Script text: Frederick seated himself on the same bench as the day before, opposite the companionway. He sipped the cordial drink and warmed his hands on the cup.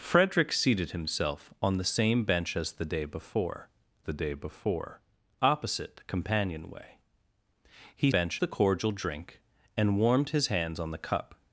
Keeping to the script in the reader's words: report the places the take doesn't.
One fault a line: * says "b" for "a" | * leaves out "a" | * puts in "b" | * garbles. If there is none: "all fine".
* puts in "the day before"
* says "bench" for "sipped"